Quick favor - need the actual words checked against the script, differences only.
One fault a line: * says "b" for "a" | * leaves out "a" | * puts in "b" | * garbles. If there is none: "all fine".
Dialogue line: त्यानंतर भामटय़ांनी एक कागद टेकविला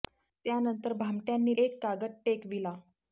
all fine